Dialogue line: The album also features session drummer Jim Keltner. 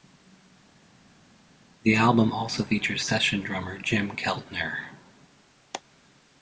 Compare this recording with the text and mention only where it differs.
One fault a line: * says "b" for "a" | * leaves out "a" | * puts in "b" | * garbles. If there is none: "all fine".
all fine